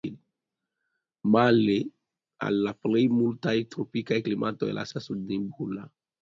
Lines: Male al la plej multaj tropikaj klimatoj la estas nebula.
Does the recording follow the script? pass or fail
pass